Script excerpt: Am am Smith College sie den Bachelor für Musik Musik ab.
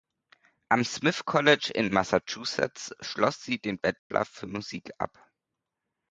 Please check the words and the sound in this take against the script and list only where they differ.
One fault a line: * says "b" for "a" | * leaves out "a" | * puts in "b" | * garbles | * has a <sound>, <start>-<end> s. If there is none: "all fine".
* leaves out "am"
* puts in "in Massachusetts schloss"
* has a dropout, 4.0-4.1 s
* leaves out "Musik"